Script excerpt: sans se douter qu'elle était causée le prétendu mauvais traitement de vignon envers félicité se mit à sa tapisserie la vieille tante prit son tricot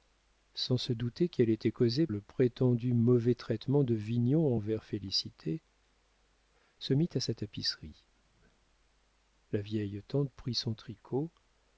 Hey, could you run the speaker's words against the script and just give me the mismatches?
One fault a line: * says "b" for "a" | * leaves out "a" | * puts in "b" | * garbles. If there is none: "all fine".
all fine